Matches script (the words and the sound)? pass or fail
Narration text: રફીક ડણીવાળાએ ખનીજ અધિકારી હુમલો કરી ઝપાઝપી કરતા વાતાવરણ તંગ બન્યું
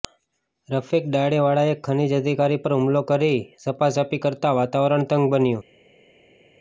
fail